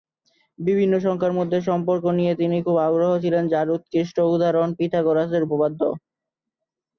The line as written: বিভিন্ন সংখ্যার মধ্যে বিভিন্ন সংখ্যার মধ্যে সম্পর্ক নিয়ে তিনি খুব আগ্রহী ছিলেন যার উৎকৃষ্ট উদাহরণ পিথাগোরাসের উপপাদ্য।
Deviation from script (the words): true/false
true